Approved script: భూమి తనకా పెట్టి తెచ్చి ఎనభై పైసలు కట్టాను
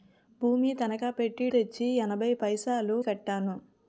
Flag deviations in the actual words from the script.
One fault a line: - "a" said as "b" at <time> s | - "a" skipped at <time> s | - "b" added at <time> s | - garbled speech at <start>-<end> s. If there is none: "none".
none